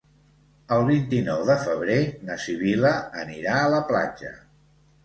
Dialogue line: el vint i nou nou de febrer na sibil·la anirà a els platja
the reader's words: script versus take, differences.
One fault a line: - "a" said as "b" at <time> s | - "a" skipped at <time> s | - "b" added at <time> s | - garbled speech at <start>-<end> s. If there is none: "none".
- "nou" skipped at 1.4 s
- "els" said as "la" at 3.8 s